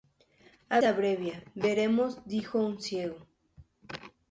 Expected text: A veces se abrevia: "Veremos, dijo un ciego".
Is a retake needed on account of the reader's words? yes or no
yes